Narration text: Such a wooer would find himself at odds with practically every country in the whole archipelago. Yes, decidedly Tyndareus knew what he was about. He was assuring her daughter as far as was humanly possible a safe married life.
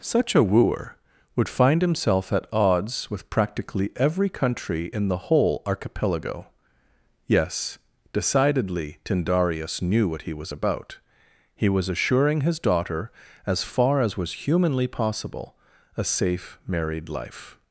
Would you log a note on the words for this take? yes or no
yes